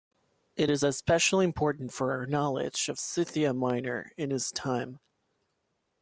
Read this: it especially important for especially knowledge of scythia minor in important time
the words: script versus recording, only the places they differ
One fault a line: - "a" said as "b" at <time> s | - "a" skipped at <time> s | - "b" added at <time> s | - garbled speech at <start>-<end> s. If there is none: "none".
- "is" added at 0.7 s
- "especially" said as "our" at 2.1 s
- "important" said as "his" at 4.3 s